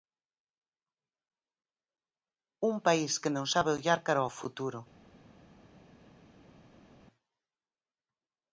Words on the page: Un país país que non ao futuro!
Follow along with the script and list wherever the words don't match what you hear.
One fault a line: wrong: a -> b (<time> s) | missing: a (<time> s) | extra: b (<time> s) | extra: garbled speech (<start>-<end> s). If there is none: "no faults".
missing: país (3.1 s)
extra: sabe ollar cara (3.5 s)